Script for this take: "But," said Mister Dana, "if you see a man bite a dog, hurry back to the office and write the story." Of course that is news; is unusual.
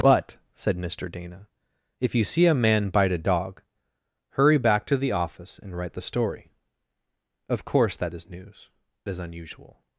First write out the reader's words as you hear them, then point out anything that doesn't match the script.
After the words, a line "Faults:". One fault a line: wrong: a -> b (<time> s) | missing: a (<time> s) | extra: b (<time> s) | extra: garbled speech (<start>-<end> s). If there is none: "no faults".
"But," said Mister Dana, "if you see a man bite a dog, hurry back to the office and write the story." Of course that is news; is unusual.
Faults:
no faults